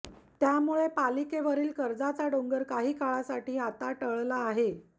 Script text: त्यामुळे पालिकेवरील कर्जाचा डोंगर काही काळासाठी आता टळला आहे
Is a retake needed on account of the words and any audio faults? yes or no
no